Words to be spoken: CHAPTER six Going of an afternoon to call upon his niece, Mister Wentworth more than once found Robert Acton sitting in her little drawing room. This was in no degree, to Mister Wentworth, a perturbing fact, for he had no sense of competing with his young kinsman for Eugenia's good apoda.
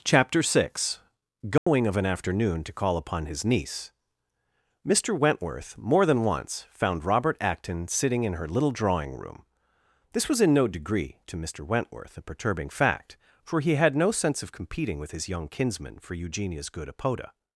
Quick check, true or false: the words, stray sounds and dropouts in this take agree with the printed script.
false